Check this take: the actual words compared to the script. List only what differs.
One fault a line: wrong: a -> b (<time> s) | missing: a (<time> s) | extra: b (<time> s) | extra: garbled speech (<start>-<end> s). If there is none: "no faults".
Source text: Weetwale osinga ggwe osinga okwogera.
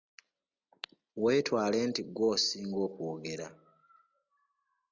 wrong: osinga -> nti (1.9 s)